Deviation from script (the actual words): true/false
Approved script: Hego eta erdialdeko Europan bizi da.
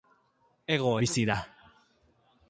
true